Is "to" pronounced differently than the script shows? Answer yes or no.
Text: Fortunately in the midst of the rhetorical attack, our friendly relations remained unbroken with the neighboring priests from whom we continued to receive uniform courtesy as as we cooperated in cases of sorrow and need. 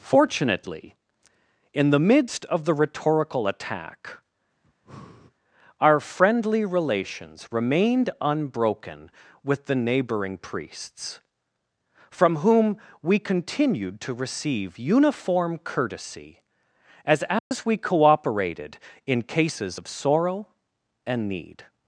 no